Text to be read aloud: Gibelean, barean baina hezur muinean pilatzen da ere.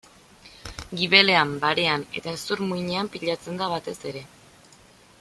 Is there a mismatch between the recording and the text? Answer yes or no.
yes